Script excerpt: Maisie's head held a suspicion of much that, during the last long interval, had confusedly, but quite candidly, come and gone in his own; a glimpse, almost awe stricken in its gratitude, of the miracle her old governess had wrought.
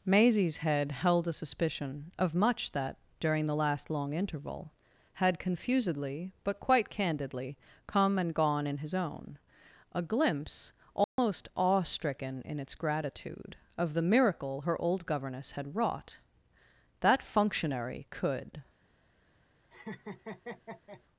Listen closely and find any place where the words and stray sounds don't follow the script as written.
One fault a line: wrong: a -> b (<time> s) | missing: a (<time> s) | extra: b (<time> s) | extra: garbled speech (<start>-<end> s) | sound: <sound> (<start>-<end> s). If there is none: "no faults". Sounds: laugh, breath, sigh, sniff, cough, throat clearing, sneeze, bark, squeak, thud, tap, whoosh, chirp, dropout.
sound: dropout (11.0-11.2 s)
extra: That functionary could (17.0 s)
sound: laugh (19.7-21.0 s)